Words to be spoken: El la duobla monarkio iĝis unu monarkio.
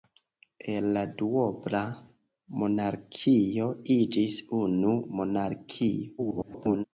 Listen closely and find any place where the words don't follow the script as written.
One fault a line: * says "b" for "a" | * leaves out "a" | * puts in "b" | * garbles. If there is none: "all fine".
* garbles